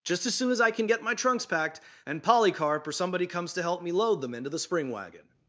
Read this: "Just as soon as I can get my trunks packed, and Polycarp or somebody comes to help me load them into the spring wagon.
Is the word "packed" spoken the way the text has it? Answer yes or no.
yes